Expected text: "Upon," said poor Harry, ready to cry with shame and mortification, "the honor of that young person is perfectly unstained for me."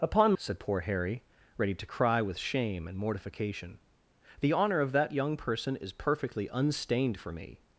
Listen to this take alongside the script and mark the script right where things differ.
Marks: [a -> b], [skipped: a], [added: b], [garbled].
"Upon," said poor Harry, ready to cry with shame and mortification, "the honor of that young person is perfectly unstained for me."